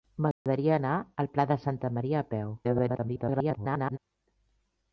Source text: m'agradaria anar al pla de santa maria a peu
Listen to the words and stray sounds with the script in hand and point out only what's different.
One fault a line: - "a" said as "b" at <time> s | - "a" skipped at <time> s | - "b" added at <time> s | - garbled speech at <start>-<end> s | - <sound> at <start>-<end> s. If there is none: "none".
- dropout at 0.3-0.5 s
- garbled speech at 2.6-4.0 s